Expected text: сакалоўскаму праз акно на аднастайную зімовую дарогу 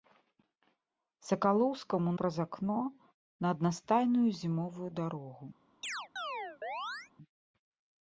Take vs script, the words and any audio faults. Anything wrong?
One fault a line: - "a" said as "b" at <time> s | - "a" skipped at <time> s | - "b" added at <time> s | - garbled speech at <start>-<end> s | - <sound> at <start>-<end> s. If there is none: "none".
- chirp at 5.8-7.1 s